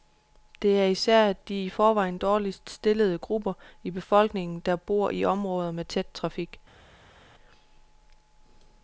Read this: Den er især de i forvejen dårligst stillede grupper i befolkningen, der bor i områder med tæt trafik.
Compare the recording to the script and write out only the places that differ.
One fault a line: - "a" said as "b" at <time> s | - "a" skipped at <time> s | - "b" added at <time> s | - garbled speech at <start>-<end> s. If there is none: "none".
- "Den" said as "Det" at 0.6 s